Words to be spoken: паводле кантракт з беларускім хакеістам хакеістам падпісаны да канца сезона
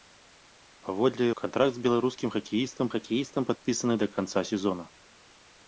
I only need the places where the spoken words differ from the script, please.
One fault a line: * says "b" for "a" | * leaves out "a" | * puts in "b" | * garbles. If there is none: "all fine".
all fine